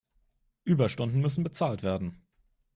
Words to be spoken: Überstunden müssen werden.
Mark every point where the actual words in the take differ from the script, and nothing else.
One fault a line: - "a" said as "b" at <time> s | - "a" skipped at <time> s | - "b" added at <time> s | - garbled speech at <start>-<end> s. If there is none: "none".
- "bezahlt" added at 1.4 s